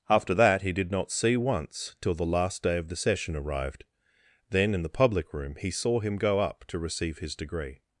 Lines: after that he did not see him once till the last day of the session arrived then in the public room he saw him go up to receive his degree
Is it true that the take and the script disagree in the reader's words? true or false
true